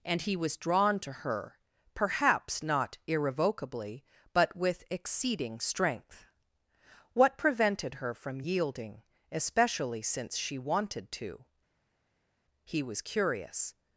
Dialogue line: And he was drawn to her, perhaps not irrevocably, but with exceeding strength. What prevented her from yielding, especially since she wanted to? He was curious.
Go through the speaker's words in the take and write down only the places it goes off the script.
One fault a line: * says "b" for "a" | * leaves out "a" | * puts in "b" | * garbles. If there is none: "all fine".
all fine